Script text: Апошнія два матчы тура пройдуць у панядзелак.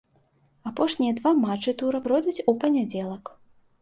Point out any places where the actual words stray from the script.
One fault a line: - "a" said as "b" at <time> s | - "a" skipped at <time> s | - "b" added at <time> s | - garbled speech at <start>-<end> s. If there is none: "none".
none